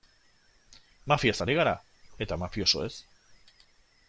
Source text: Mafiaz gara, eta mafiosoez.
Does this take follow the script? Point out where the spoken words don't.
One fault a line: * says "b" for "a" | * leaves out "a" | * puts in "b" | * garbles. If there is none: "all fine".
* puts in "ari"